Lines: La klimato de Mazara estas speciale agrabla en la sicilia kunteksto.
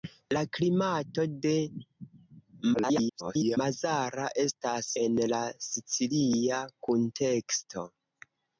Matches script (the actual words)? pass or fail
fail